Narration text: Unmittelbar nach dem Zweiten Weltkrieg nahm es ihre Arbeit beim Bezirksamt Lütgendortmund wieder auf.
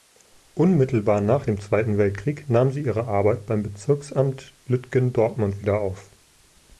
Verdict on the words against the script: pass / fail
fail